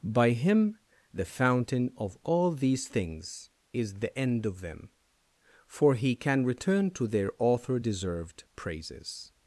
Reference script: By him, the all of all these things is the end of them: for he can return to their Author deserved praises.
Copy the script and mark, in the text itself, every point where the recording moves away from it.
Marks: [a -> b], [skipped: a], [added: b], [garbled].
By him, the [all -> fountain] of all these things is the end of them: for he can return to their Author deserved praises.